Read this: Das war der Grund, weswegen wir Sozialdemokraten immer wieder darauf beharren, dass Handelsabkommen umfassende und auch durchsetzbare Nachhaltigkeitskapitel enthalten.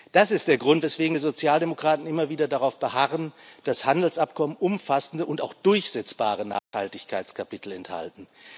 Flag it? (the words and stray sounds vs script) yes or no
yes